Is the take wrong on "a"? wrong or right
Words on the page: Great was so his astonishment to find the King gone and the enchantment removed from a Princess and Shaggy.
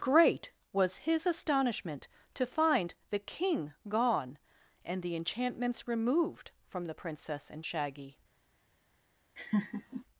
wrong